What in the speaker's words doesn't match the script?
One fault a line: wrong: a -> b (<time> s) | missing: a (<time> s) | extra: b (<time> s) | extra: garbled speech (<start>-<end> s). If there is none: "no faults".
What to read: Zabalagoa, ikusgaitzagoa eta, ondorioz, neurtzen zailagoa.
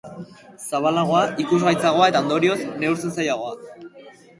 no faults